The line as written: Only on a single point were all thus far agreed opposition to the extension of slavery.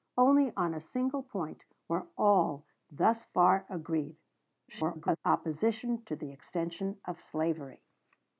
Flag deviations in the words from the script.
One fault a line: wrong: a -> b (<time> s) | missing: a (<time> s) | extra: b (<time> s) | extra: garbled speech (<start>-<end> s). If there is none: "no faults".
extra: garbled speech (4.7-5.2 s)